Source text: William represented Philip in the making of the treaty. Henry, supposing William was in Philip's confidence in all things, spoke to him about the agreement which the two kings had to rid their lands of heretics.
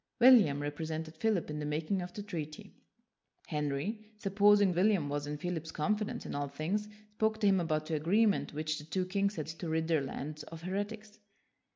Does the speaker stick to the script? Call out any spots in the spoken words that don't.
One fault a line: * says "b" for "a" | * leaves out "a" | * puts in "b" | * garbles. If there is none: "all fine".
all fine